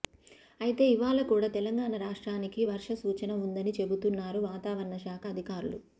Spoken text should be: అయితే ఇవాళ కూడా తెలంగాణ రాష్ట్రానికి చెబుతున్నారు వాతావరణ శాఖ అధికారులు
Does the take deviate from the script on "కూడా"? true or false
false